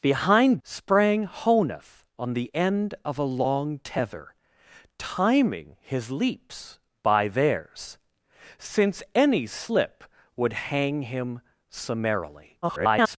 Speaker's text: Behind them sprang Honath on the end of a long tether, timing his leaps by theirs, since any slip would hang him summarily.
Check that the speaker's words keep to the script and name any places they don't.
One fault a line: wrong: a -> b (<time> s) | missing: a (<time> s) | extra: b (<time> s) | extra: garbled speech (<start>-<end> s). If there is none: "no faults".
missing: them (0.6 s)
extra: garbled speech (12.6-13.2 s)